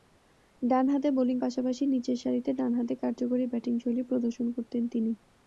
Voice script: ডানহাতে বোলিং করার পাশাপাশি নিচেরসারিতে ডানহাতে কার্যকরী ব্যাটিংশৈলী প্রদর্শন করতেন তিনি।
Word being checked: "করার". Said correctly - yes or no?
no